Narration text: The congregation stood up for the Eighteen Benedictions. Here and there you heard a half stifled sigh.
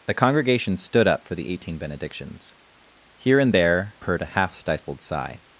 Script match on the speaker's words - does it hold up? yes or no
no